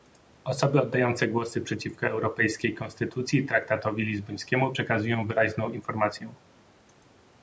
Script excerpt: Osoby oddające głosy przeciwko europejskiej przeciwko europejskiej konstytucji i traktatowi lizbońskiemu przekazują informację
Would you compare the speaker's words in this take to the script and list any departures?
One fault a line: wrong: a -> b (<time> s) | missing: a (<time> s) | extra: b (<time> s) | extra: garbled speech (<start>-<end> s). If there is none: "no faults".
missing: przeciwko europejskiej (2.7 s)
extra: wyraźną (5.3 s)